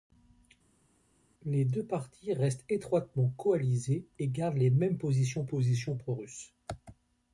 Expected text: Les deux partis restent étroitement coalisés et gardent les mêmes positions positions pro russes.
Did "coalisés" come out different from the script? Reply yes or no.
no